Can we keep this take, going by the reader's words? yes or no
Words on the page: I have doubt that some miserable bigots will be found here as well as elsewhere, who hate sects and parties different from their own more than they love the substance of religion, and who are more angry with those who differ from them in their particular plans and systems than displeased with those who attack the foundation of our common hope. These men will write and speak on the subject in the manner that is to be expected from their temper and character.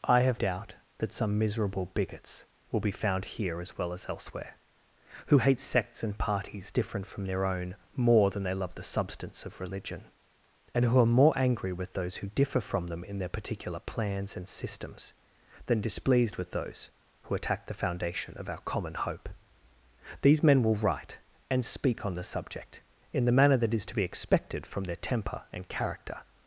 yes